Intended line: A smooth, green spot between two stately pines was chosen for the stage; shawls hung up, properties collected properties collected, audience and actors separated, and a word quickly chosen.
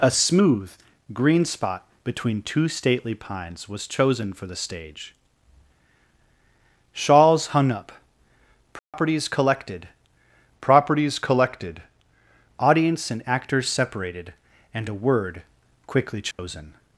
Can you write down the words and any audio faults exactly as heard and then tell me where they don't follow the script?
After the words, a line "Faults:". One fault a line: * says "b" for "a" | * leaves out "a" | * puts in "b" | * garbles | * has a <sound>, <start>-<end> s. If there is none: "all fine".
A smooth, green spot between two stately pines was chosen for the stage; shawls hung up, properties collected properties collected, audience and actors separated, and a word quickly chosen.
Faults:
* has a dropout, 8.8-8.9 s
* has a dropout, 16.3-16.4 s